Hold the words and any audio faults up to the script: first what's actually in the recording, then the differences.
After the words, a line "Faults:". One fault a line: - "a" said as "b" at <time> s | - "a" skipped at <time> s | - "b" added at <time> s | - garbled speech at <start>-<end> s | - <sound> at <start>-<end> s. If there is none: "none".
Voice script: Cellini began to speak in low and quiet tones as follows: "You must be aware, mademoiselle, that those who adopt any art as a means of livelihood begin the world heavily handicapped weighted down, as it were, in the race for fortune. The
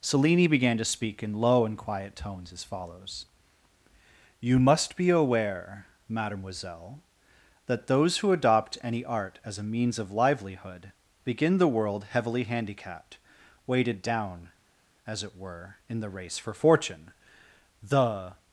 Cellini began to speak in low and quiet tones as follows: "You must be aware, mademoiselle, that those who adopt any art as a means of livelihood begin the world heavily handicapped weighted down, as it were, in the race for fortune. The
Faults:
none